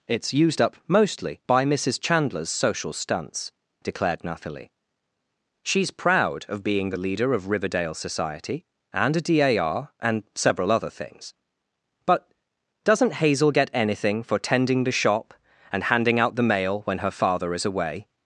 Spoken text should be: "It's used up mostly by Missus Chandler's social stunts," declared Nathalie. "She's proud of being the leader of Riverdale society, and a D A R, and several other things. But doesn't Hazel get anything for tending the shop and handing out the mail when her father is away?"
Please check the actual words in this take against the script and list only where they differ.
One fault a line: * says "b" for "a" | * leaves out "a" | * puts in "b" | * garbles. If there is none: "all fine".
all fine